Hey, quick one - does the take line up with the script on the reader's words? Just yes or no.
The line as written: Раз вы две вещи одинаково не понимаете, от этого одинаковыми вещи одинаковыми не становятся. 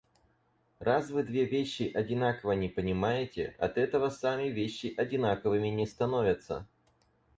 no